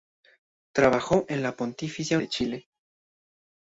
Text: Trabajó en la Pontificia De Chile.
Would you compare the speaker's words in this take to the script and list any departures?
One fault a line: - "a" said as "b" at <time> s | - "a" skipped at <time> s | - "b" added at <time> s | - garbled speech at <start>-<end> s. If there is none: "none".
none